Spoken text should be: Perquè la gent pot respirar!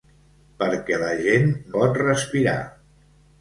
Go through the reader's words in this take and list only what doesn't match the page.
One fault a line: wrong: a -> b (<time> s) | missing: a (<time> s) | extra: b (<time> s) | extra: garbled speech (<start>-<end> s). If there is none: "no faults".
no faults